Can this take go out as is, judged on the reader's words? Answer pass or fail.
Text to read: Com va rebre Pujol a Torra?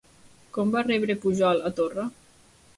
pass